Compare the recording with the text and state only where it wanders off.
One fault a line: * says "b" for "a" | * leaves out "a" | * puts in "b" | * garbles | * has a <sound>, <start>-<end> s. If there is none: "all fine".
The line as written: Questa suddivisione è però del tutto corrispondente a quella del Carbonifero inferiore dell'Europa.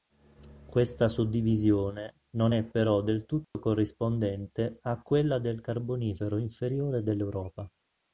* puts in "non"
* has a dropout, 3.4-3.5 s